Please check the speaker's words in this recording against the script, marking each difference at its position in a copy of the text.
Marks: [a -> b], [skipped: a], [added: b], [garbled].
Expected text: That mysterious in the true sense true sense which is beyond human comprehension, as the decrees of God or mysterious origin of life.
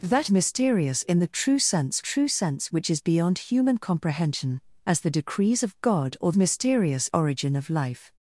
That mysterious in the true sense true sense which is beyond human comprehension, as the decrees of God or mysterious origin of life.